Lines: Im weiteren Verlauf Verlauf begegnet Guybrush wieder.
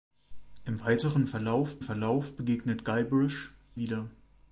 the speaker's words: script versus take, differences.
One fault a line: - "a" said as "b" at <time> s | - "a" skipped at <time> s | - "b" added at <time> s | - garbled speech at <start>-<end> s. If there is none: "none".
none